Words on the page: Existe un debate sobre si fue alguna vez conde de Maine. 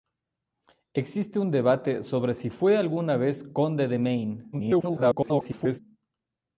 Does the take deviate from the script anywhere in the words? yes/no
yes